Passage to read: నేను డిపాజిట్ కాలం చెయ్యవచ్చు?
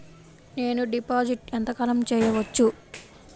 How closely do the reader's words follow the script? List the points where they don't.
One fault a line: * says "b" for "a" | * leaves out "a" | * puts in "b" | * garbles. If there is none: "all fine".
* puts in "ఎంత"